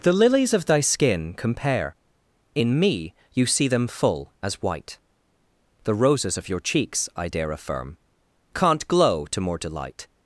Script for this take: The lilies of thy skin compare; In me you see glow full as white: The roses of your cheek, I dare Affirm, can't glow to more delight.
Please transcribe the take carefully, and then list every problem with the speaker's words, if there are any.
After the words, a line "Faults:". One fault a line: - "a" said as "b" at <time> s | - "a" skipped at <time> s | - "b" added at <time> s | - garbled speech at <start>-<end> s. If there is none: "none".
The lilies of thy skin compare; In me you see them full as white: The roses of your cheeks, I dare Affirm, can't glow to more delight.
Faults:
- "glow" said as "them" at 3.7 s
- "cheek" said as "cheeks" at 6.6 s